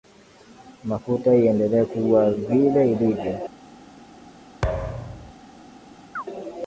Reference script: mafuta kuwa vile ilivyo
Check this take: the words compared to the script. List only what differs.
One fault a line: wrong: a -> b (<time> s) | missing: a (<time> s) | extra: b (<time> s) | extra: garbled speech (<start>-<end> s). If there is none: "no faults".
extra: iendelee (1.4 s)